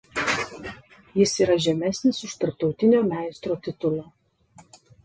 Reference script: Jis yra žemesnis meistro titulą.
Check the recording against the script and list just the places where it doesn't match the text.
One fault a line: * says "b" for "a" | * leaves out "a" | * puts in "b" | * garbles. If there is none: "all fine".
* puts in "už tarptautinio"